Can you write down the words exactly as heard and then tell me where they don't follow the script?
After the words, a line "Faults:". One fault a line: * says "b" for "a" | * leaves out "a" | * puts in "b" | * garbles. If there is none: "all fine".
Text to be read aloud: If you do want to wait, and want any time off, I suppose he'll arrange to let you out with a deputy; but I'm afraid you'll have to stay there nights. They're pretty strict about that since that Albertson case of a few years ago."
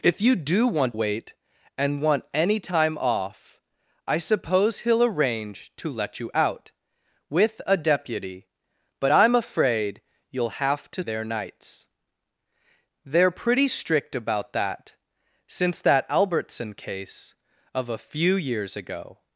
If you do want wait, and want any time off, I suppose he'll arrange to let you out with a deputy; but I'm afraid you'll have to there nights. They're pretty strict about that since that Albertson case of a few years ago."
Faults:
* leaves out "to"
* leaves out "stay"